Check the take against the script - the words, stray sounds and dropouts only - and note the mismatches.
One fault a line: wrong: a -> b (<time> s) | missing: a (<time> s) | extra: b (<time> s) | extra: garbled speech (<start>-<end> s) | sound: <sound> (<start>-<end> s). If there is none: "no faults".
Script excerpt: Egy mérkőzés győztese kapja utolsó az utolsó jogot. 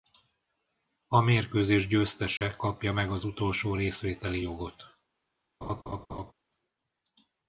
wrong: Egy -> A (1.1 s)
sound: dropout (2.4-2.4 s)
wrong: utolsó -> meg (2.9 s)
extra: részvételi (3.8 s)
sound: laugh (5.6-6.3 s)